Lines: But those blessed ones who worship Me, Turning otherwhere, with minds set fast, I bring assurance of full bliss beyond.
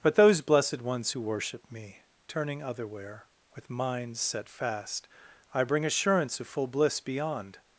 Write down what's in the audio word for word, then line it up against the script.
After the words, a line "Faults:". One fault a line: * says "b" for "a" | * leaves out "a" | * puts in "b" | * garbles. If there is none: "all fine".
But those blessed ones who worship Me, Turning otherwhere, with minds set fast, I bring assurance of full bliss beyond.
Faults:
all fine